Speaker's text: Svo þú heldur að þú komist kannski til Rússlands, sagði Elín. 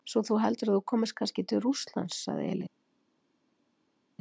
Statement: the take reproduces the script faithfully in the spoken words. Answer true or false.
true